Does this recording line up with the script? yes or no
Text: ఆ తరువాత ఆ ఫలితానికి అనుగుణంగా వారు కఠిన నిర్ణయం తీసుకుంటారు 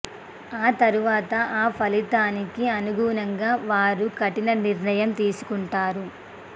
yes